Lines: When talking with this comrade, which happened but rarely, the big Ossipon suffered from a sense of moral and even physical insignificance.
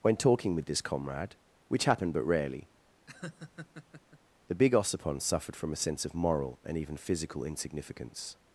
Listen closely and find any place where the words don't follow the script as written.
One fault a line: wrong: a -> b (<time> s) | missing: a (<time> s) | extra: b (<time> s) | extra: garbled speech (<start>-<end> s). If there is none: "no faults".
no faults